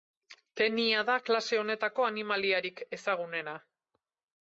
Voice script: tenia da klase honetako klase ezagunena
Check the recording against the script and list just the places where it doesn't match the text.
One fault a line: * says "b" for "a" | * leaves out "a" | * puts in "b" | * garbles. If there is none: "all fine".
* says "animaliarik" for "klase"